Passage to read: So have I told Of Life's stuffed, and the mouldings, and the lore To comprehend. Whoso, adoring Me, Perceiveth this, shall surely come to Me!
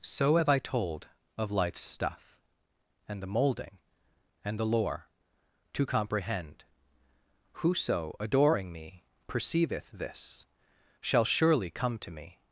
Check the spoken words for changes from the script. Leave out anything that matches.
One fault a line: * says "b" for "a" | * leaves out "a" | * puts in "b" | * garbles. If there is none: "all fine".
* says "stuff" for "stuffed"
* says "moulding" for "mouldings"